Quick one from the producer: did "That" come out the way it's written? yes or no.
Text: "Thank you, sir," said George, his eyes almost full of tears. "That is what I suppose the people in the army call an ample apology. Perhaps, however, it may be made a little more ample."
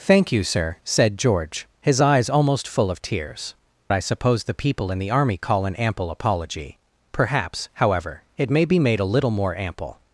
no